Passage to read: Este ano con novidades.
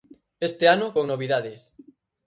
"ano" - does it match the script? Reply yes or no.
yes